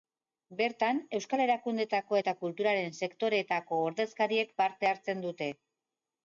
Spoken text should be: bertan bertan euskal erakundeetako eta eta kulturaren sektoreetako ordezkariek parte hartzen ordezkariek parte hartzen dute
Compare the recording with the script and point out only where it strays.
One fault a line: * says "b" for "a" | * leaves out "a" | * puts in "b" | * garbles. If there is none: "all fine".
* leaves out "bertan"
* leaves out "eta"
* leaves out "ordezkariek parte hartzen"